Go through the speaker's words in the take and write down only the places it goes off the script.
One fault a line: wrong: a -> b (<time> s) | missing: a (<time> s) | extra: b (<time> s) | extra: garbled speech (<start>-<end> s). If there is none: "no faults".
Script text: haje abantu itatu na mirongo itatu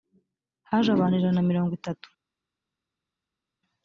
wrong: itatu -> ijana (1.2 s)